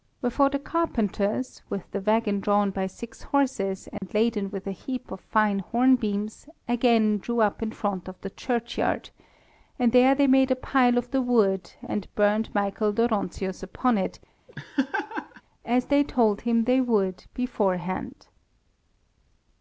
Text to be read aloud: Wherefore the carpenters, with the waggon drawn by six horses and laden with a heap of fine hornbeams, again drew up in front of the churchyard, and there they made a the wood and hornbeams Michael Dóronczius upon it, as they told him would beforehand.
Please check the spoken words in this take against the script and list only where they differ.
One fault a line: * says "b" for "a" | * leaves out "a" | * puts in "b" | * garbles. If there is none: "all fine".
* puts in "pile of"
* says "burnt" for "hornbeams"
* puts in "they"